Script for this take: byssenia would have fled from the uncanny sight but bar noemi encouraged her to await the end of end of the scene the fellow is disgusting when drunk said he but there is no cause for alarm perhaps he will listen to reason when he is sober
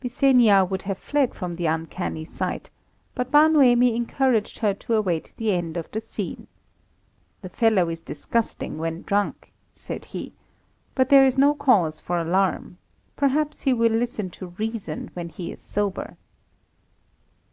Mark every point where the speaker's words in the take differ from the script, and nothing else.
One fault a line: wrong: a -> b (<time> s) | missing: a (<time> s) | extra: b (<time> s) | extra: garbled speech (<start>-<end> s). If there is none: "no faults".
missing: end of (5.9 s)